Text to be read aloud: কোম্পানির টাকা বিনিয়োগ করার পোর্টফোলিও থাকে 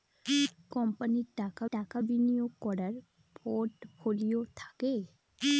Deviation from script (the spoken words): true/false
true